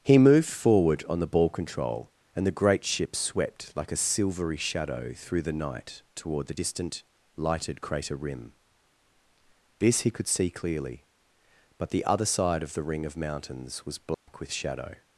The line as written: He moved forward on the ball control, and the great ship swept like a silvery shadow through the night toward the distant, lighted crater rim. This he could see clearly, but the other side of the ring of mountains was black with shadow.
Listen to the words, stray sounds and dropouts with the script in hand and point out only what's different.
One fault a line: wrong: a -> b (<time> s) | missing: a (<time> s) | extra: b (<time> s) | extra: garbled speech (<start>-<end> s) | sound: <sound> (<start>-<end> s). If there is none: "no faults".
sound: dropout (14.1-14.3 s)